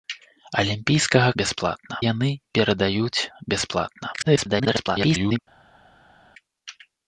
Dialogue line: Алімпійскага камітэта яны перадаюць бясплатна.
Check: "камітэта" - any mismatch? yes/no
yes